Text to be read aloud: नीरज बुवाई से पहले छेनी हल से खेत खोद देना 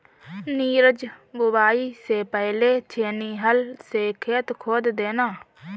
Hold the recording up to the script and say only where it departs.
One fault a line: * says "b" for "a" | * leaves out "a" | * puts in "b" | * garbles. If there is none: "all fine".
all fine